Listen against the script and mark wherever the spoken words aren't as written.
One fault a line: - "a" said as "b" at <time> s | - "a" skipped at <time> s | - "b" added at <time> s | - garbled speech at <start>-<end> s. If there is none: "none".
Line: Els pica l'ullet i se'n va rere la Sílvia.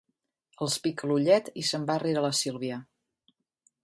none